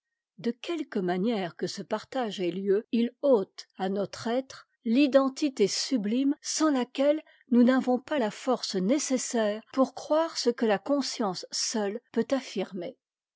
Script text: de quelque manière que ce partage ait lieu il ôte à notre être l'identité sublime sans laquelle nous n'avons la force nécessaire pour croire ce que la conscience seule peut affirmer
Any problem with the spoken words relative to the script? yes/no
yes